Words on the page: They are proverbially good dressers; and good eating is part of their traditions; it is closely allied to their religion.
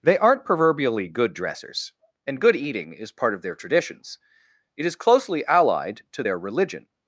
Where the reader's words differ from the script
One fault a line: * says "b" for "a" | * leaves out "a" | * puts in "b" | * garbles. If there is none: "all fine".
* says "aren't" for "are"